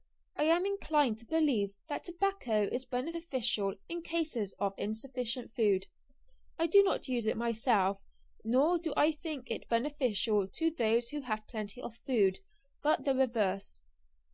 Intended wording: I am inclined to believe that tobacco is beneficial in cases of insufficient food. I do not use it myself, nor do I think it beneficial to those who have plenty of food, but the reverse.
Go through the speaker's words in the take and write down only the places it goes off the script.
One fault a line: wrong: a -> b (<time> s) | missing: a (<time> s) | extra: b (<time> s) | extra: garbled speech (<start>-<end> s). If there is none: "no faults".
no faults